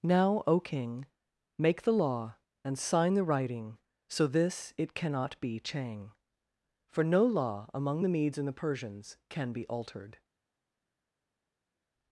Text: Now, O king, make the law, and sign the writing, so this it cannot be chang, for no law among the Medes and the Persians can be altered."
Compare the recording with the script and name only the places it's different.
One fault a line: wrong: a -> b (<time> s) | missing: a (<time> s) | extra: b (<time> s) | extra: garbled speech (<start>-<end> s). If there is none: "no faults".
no faults